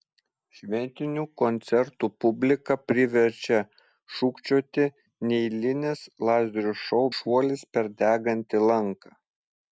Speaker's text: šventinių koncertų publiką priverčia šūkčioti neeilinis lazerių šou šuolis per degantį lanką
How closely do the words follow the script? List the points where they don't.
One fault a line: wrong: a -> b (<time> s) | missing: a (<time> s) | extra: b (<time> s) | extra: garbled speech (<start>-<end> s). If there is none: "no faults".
no faults